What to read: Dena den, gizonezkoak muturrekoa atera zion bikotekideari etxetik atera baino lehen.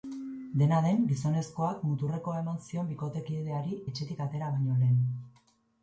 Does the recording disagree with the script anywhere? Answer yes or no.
yes